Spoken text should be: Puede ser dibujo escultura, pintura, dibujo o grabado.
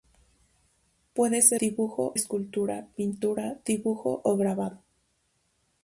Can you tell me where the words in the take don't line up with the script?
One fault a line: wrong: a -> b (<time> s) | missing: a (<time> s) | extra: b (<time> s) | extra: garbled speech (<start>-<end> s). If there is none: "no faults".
no faults